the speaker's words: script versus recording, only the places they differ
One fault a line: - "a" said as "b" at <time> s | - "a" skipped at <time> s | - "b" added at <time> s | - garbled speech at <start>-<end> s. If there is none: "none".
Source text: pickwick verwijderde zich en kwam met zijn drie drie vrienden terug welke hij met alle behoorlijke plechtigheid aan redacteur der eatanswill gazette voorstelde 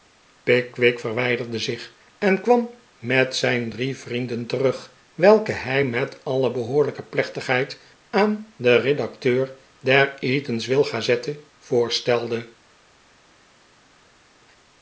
- "drie" skipped at 4.0 s
- "den" added at 8.6 s